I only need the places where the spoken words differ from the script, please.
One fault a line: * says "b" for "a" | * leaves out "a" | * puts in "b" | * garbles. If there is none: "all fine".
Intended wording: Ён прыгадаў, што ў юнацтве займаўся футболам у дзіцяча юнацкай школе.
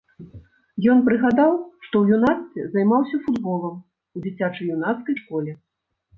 all fine